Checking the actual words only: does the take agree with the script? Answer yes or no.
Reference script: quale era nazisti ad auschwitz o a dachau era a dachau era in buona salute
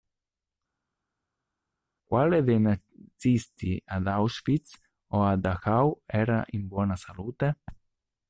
no